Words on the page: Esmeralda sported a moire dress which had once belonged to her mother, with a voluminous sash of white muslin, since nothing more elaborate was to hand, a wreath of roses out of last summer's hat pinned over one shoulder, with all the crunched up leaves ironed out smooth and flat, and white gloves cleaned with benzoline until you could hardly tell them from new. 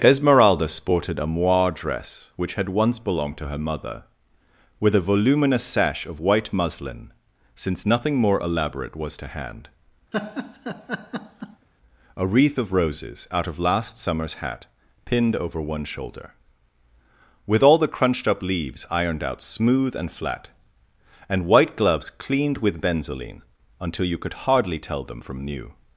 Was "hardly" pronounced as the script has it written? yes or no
yes